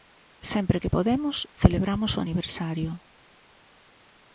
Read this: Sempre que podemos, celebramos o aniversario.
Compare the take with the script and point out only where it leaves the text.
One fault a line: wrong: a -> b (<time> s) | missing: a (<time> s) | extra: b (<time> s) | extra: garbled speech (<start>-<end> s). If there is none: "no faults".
no faults